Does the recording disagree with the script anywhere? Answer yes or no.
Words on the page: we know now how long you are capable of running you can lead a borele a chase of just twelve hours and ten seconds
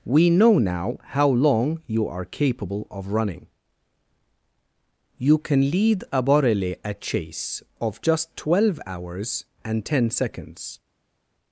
no